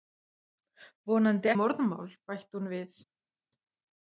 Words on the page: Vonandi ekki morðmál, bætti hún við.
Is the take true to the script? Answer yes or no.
no